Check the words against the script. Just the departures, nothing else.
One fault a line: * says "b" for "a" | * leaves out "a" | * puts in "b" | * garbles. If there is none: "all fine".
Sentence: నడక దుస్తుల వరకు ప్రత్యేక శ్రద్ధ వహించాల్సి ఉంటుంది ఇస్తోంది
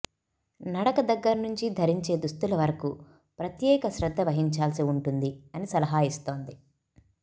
* puts in "దగ్గర నుంచి ధరించే"
* puts in "అని సలహా"